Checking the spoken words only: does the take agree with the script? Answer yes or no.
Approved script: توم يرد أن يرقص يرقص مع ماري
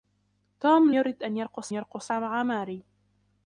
yes